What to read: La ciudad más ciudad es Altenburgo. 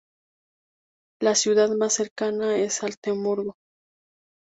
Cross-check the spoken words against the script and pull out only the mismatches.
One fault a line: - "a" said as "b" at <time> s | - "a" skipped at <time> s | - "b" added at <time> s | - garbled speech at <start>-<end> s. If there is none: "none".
- "ciudad" said as "cercana" at 1.9 s